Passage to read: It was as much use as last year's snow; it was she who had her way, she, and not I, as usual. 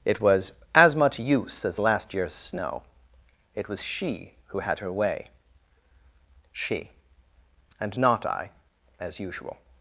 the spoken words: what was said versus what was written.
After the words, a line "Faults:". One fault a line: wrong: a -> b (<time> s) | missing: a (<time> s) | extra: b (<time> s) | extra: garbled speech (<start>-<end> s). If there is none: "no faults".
It was as much use as last year's snow; it was she who had her way, she, and not I, as usual.
Faults:
no faults